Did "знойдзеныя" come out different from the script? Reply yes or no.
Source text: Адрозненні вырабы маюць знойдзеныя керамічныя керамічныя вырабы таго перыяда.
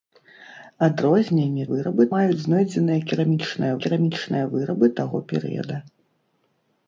no